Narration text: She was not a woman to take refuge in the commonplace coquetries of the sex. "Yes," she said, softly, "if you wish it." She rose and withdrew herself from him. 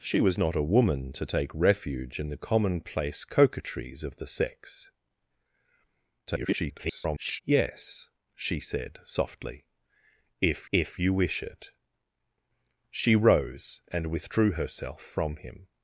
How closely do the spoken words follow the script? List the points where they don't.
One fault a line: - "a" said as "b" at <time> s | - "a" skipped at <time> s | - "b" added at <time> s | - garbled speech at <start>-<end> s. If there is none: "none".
- garbled speech at 6.3-7.4 s
- "if" added at 10.7 s